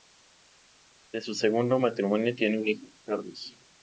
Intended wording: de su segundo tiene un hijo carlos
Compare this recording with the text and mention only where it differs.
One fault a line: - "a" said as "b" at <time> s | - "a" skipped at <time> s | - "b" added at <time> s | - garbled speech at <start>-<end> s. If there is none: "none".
- "matrimonio" added at 1.8 s